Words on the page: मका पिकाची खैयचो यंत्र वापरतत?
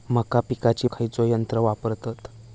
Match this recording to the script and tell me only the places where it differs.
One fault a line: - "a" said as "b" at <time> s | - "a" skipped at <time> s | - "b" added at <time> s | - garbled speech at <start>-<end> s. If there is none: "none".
none